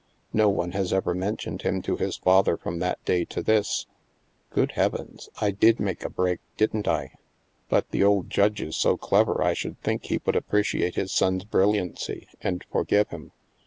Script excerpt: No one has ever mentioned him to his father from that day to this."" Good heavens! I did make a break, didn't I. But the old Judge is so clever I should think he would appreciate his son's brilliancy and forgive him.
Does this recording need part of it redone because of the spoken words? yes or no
no